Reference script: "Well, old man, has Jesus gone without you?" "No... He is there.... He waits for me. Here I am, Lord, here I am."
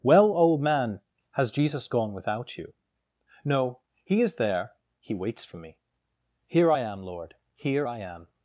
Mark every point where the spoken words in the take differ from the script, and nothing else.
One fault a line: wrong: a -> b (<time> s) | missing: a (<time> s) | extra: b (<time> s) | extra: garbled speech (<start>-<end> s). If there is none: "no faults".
no faults